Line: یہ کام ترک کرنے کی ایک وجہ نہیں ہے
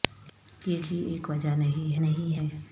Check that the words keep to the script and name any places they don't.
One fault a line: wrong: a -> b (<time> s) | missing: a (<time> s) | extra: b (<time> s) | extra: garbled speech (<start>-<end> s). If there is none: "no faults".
missing: کام ترک کرنے (0.8 s)
extra: نہیں (2.0 s)